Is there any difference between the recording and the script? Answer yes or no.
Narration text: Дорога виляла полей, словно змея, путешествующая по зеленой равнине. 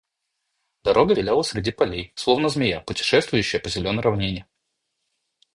yes